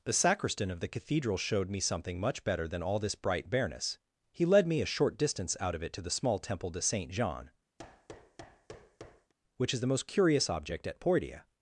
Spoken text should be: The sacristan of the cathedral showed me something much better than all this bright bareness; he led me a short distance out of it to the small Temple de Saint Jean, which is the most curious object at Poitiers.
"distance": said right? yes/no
yes